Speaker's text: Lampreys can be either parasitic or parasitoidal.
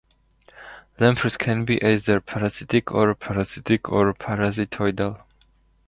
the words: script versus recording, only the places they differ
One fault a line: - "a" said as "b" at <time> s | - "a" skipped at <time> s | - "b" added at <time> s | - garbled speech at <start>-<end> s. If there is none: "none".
- "parasitic or" added at 3.1 s